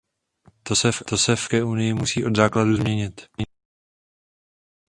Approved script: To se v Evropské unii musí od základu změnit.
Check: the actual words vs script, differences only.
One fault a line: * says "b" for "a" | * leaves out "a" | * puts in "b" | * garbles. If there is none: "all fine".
all fine